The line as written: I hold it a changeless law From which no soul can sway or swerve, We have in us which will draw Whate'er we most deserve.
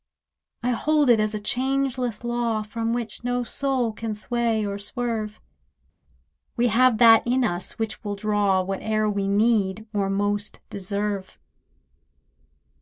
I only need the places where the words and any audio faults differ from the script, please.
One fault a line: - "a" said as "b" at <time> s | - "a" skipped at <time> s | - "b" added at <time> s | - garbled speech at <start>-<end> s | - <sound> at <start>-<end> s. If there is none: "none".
- "as" added at 1.2 s
- "that" added at 7.0 s
- "need or" added at 9.3 s